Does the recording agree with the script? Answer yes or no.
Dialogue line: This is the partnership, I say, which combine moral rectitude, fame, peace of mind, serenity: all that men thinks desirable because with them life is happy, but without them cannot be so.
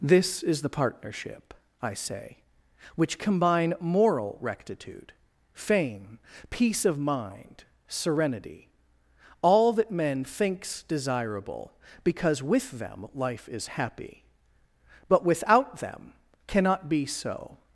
yes